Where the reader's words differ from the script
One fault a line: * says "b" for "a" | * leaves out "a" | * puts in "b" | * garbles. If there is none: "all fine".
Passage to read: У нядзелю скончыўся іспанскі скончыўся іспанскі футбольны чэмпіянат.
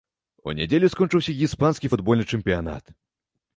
* leaves out "скончыўся іспанскі"